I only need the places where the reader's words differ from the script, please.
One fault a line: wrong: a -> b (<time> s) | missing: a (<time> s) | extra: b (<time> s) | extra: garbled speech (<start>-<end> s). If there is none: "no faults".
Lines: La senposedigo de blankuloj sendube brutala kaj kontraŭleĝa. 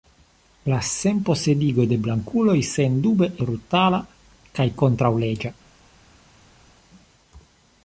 no faults